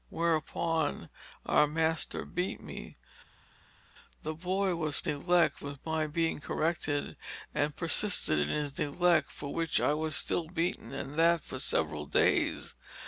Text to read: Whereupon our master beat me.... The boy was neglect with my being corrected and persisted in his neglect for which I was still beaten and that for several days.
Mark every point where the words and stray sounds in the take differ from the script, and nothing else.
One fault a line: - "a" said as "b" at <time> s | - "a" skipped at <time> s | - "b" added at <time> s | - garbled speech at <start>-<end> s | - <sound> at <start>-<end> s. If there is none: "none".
none